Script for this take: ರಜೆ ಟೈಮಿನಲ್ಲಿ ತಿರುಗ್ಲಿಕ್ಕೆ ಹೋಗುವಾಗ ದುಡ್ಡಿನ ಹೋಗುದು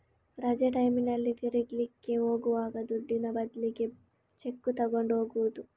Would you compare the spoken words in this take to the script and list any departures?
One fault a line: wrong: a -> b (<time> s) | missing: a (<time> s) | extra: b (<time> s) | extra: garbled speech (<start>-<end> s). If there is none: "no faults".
extra: ಬದ್ಲಿಗೆ ಚೆಕ್ಕು ತಗೊಂಡು (3.3 s)